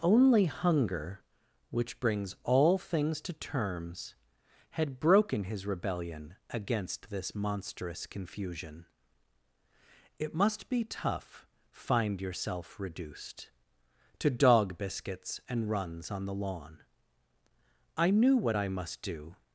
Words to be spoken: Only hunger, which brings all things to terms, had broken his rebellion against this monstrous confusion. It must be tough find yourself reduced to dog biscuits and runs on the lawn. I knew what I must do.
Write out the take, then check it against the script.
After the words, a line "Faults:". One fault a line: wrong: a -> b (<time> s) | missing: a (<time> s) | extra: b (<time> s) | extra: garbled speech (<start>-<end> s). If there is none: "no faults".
Only hunger, which brings all things to terms, had broken his rebellion against this monstrous confusion. It must be tough find yourself reduced to dog biscuits and runs on the lawn. I knew what I must do.
Faults:
no faults